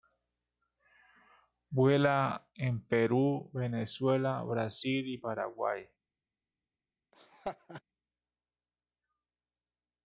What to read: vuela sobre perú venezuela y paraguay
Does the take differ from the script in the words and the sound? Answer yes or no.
yes